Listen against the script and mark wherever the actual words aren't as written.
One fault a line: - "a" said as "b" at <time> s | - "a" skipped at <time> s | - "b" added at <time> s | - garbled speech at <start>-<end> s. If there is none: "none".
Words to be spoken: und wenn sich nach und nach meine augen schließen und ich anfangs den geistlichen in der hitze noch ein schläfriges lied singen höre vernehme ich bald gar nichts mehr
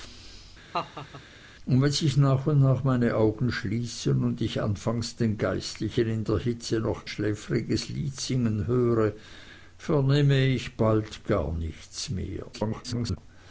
- "ein" skipped at 7.1 s
- garbled speech at 12.5-13.2 s